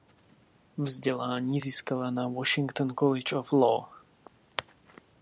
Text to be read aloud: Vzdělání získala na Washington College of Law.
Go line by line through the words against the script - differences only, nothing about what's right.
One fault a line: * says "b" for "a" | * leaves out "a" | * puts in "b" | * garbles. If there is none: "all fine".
all fine